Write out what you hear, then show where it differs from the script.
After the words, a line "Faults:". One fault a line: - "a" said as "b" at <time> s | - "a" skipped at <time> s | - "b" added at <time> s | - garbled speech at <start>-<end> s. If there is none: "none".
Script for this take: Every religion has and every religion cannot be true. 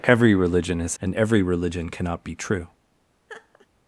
Every religion has and every religion cannot be true.
Faults:
none